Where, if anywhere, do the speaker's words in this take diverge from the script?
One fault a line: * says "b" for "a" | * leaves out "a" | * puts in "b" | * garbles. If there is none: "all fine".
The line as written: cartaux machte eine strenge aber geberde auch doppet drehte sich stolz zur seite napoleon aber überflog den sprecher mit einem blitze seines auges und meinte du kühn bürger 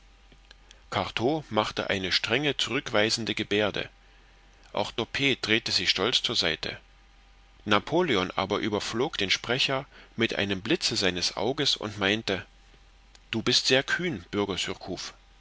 * says "zurückweisende" for "aber"
* puts in "bist sehr"